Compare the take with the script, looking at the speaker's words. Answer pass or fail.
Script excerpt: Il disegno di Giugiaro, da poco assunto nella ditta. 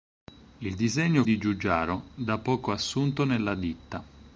pass